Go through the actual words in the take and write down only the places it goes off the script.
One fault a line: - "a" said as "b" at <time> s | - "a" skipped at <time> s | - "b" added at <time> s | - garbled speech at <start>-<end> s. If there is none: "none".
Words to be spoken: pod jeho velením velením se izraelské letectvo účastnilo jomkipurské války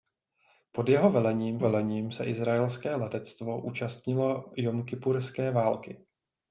none